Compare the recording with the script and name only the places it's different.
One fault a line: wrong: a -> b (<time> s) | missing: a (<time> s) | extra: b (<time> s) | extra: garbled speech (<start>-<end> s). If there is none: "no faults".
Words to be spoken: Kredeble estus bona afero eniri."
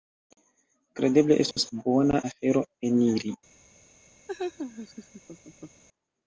no faults